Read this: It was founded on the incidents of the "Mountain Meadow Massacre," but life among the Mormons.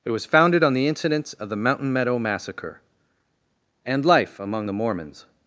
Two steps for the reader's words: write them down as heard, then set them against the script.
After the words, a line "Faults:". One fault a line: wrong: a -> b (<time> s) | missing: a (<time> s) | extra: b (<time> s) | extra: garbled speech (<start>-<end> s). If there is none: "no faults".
It was founded on the incidents of the "Mountain Meadow Massacre," and life among the Mormons.
Faults:
wrong: but -> and (3.9 s)